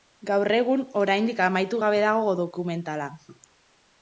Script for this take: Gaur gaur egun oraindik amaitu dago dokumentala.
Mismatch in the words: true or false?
true